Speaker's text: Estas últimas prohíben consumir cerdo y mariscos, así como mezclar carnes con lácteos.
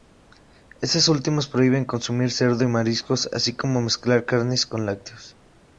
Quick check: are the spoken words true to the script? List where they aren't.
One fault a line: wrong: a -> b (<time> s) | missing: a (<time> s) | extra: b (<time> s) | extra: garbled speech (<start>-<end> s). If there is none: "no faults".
no faults